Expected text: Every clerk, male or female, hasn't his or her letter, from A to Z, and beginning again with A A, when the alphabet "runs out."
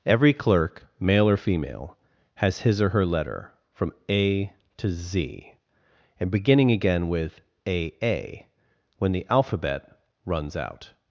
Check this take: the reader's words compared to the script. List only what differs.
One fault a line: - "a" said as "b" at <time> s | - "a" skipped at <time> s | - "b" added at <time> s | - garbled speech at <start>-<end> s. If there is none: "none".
- "hasn't" said as "has" at 2.4 s